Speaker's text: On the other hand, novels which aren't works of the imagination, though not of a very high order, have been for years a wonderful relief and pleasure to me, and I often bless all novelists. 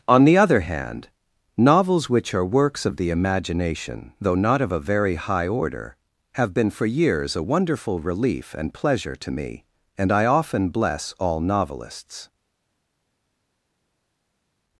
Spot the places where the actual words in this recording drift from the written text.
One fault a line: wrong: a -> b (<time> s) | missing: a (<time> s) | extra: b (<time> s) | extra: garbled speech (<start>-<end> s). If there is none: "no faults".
wrong: aren't -> are (2.3 s)